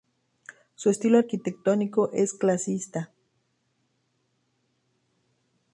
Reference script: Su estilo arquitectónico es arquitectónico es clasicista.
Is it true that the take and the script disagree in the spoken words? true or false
true